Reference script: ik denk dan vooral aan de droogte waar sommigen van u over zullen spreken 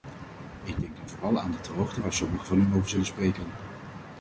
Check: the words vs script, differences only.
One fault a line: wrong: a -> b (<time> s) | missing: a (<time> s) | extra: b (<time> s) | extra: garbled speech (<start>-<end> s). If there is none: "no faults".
no faults